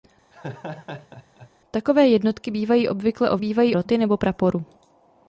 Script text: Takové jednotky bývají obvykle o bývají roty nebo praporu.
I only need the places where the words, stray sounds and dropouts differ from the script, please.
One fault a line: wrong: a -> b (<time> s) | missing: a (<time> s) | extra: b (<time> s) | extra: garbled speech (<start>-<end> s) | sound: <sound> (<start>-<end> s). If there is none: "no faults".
sound: laugh (0.3-1.5 s)